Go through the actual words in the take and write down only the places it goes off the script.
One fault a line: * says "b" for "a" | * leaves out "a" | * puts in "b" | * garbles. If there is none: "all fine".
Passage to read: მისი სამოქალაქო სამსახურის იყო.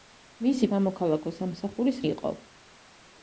all fine